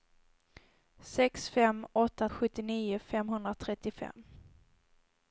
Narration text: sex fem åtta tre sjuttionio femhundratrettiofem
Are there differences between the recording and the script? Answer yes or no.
yes